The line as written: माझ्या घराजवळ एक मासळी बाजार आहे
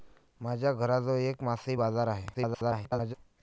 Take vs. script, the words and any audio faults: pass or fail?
fail